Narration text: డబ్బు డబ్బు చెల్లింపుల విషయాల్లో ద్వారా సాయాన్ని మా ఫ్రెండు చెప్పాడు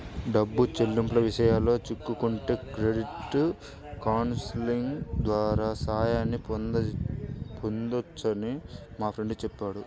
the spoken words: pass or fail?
fail